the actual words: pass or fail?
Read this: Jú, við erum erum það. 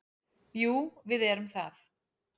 fail